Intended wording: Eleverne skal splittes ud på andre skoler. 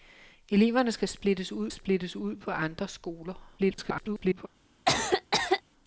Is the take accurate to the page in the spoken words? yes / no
no